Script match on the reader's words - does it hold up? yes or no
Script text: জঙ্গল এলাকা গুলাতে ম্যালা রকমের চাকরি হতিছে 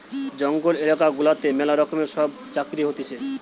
no